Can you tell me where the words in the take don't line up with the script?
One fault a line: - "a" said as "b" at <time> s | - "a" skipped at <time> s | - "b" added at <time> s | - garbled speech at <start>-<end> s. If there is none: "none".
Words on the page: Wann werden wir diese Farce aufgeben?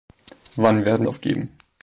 - "wir diese Farce" skipped at 1.1 s